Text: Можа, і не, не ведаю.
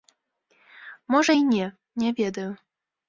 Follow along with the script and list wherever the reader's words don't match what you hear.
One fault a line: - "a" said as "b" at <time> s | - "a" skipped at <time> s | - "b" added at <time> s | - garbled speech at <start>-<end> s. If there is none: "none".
none